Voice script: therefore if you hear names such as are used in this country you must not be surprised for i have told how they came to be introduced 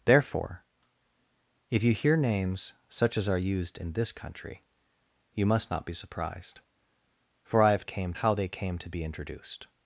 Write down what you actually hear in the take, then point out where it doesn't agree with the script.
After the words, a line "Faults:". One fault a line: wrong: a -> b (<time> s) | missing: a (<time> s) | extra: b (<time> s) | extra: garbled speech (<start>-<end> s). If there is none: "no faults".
therefore if you hear names such as are used in this country you must not be surprised for i have came how they came to be introduced
Faults:
wrong: told -> came (7.8 s)